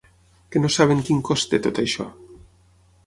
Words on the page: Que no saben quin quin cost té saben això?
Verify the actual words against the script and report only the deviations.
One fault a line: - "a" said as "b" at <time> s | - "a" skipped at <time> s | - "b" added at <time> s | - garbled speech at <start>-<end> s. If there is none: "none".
- "quin" skipped at 1.2 s
- "saben" said as "tot" at 1.6 s